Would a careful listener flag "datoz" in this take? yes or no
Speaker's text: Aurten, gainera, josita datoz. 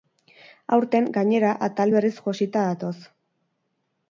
no